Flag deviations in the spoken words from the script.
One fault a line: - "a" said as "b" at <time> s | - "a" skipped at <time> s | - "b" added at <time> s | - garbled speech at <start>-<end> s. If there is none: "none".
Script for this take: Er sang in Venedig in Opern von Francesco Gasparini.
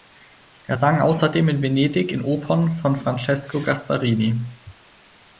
- "außerdem" added at 1.0 s